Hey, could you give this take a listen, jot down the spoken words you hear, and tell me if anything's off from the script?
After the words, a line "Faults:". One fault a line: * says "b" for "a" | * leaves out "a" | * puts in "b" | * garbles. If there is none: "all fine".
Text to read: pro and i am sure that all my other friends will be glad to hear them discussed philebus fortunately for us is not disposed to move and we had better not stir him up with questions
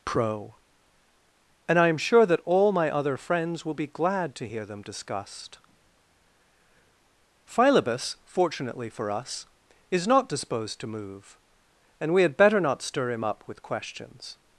pro and i am sure that all my other friends will be glad to hear them discussed philebus fortunately for us is not disposed to move and we had better not stir him up with questions
Faults:
all fine